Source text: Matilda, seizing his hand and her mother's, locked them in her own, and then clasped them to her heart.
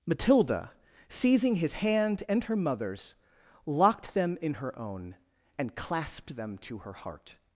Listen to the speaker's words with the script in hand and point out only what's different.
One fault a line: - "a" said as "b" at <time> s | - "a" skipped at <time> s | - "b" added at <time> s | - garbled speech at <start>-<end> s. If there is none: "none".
- "then" skipped at 5.8 s